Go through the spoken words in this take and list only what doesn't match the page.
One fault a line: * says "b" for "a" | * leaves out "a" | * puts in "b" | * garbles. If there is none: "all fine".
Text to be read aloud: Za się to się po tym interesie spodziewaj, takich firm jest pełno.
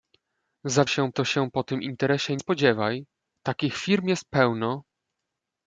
all fine